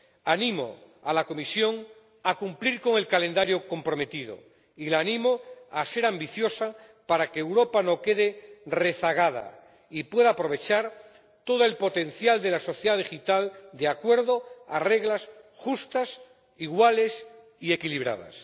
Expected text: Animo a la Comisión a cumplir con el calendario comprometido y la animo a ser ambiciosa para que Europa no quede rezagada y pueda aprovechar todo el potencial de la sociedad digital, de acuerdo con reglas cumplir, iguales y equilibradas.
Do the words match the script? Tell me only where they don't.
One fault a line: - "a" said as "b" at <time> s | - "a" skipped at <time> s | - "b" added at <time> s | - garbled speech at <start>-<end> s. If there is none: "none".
- "cumplir" said as "justas" at 15.6 s